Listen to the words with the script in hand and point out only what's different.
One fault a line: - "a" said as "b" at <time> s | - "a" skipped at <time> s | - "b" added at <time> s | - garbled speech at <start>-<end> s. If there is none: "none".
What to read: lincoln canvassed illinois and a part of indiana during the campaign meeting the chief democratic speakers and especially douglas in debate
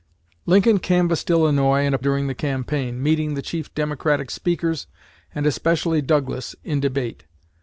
- "part of indiana" skipped at 2.0 s